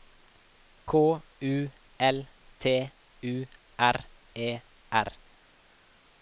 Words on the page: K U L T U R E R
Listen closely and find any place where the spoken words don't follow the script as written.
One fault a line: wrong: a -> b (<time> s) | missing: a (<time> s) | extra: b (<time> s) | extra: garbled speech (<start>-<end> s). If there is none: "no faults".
no faults